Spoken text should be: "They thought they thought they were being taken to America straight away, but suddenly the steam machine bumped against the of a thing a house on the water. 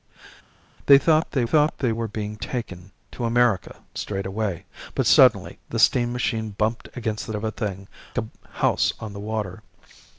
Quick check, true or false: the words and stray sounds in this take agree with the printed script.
true